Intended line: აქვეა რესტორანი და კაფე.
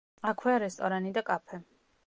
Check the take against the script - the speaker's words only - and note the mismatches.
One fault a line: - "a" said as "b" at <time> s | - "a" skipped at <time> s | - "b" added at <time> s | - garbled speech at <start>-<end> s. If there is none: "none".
none